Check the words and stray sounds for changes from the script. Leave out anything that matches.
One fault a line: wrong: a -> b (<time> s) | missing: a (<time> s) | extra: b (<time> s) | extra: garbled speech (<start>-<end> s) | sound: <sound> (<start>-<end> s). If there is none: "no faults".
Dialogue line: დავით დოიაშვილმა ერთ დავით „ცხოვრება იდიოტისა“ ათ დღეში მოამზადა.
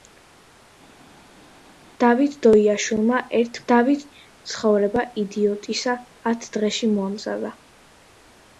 no faults